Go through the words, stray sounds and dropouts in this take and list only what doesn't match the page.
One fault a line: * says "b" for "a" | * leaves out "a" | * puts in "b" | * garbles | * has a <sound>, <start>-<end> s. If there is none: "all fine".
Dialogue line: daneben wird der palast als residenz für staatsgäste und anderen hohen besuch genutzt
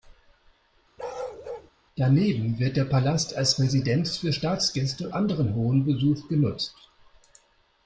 * has a bark, 1.0-1.7 s
* leaves out "und"